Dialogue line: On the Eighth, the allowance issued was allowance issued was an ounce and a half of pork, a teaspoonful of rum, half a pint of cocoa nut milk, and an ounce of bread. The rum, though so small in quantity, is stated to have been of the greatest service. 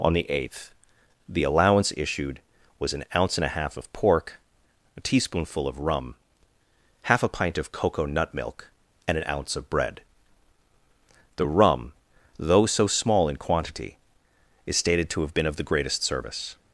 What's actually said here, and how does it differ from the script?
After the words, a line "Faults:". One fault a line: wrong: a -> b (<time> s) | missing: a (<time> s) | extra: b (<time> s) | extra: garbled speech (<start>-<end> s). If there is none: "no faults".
On the Eighth, the allowance issued was an ounce and a half of pork, a teaspoonful of rum, half a pint of cocoa nut milk, and an ounce of bread. The rum, though so small in quantity, is stated to have been of the greatest service.
Faults:
missing: allowance issued was (2.9 s)